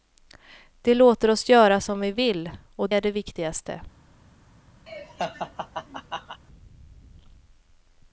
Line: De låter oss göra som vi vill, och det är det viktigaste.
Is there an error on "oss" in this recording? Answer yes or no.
no